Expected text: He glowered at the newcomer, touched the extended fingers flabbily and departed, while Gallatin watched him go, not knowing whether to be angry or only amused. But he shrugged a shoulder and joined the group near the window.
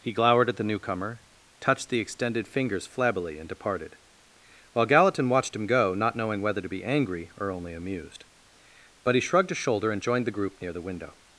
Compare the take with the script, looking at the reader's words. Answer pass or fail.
pass